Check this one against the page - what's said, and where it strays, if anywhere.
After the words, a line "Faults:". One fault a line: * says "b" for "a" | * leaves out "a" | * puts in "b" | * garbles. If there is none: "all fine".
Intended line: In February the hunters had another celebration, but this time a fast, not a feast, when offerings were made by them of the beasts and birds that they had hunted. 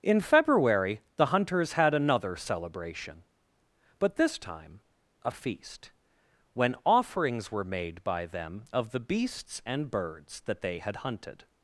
In February the hunters had another celebration, but this time a a feast, when offerings were made by them of the beasts and birds that they had hunted.
Faults:
* leaves out "fast not"